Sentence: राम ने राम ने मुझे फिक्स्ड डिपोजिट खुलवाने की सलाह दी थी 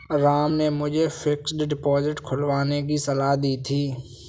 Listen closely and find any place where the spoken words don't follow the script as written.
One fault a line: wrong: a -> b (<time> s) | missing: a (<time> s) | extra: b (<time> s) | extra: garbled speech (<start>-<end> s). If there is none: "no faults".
missing: राम ने (0.7 s)